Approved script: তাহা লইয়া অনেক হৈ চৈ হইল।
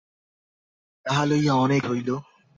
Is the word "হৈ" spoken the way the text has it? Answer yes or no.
no